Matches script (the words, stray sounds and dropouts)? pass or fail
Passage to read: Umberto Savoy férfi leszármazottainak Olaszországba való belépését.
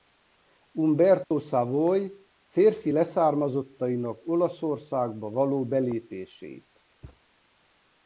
fail